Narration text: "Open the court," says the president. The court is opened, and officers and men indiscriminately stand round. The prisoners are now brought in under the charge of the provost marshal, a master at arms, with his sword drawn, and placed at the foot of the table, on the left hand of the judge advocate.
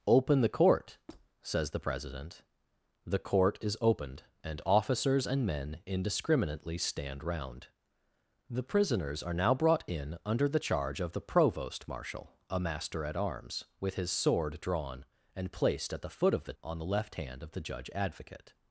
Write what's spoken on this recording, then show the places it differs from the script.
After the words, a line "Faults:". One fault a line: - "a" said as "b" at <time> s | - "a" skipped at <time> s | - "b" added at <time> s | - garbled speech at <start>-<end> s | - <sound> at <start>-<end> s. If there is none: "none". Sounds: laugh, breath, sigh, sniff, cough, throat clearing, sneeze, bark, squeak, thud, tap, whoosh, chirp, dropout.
"Open the court," says the president. The court is opened, and officers and men indiscriminately stand round. The prisoners are now brought in under the charge of the provost marshal, a master at arms, with his sword drawn, and placed at the foot of the on the left hand of the judge advocate.
Faults:
- squeak at 1.1-1.3 s
- "table" skipped at 16.5 s